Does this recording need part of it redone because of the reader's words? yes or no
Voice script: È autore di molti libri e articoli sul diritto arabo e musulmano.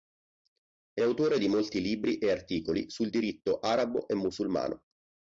no